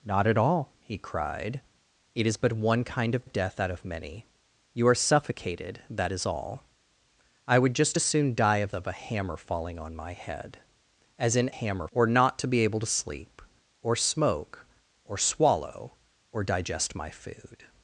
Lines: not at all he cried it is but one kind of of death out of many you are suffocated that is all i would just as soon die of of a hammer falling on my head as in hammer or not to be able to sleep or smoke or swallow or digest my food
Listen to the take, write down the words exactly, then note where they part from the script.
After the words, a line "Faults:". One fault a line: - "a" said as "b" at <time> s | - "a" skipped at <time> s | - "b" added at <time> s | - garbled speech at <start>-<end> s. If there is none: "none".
not at all he cried it is but one kind of of death out of many you are suffocated that is all i would just as soon die of of a hammer falling on my head as in hammer or not to be able to sleep or smoke or swallow or digest my food
Faults:
none